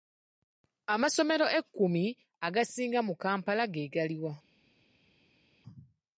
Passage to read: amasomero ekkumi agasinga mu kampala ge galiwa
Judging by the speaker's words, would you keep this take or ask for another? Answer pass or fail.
pass